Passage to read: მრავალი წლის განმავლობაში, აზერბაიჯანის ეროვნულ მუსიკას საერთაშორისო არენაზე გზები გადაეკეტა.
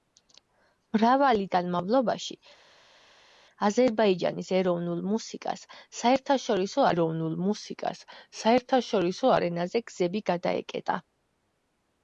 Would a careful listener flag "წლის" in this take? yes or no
yes